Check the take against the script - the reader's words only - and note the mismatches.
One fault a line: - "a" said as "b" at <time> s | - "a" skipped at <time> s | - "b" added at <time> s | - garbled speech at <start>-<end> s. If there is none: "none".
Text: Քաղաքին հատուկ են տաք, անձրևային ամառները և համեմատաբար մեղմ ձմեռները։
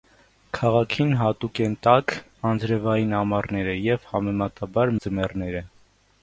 - "մեղմ" skipped at 5.0 s